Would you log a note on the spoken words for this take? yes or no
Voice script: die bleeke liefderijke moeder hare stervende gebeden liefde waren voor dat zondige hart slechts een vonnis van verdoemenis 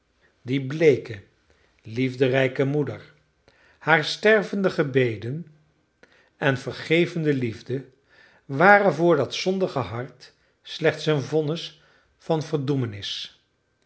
yes